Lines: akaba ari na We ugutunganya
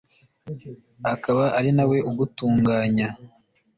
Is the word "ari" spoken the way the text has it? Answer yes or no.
yes